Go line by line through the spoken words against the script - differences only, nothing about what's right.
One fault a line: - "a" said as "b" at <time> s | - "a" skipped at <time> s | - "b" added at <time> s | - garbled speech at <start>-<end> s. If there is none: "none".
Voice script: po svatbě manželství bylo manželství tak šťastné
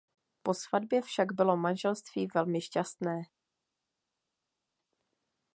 - "manželství" said as "však" at 1.0 s
- "tak" said as "velmi" at 2.3 s